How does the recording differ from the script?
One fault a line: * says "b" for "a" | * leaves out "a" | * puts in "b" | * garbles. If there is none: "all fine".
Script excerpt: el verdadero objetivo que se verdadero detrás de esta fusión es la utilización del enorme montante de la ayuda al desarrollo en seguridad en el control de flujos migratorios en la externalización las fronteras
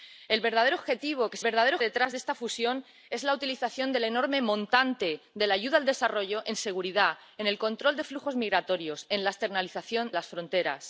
all fine